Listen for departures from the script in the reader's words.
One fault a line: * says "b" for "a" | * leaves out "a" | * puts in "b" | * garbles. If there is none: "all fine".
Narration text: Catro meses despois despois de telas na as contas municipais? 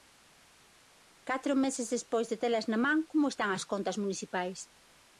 * leaves out "despois"
* puts in "man como están"